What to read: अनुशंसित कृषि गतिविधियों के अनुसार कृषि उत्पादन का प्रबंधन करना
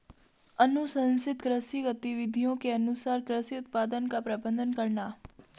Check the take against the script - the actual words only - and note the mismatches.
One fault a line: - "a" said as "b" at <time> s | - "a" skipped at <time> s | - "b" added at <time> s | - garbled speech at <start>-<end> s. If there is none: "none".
none